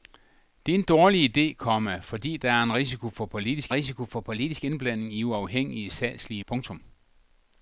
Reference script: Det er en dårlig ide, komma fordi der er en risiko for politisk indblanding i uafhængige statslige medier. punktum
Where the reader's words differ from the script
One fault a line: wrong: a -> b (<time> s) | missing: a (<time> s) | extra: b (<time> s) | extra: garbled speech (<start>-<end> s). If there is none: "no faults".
extra: risiko for politisk (3.7 s)
missing: medier (6.4 s)